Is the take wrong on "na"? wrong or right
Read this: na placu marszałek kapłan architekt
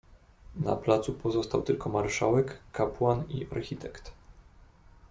right